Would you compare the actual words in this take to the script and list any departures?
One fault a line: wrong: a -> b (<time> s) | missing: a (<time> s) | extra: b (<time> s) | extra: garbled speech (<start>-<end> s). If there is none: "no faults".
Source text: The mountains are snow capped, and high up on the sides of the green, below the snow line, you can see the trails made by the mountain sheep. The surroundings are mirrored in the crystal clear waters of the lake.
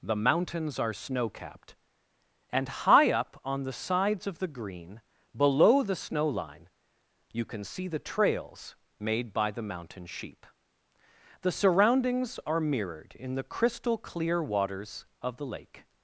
no faults